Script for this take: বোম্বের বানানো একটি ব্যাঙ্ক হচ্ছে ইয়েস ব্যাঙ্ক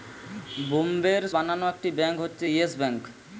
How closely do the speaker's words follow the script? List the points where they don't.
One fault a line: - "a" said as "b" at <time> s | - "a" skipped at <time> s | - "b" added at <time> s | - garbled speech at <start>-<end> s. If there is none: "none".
none